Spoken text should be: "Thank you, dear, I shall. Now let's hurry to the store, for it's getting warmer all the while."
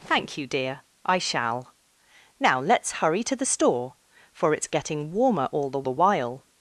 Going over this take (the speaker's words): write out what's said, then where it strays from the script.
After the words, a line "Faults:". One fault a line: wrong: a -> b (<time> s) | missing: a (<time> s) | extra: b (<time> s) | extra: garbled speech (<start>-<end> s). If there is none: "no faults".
"Thank you, dear, I shall. Now let's hurry to the store, for it's getting warmer all the the while."
Faults:
extra: the (5.8 s)